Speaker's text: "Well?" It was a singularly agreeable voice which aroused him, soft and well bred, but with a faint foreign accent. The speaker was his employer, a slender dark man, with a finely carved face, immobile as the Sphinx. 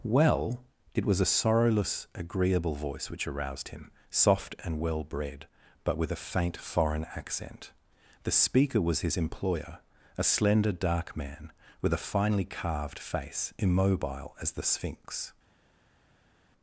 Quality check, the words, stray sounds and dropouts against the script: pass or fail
fail